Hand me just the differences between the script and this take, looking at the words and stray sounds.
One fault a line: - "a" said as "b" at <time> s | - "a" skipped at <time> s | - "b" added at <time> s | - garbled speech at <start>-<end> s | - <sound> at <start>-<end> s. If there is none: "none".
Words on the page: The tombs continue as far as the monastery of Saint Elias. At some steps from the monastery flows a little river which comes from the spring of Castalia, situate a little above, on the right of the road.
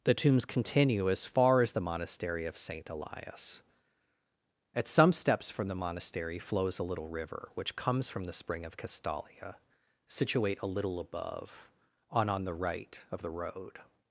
- "on" added at 12.3 s